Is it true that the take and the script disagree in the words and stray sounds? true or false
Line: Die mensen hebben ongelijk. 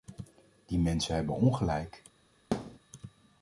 true